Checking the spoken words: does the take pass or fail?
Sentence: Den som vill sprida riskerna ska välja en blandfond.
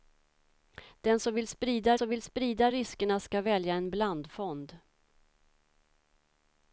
fail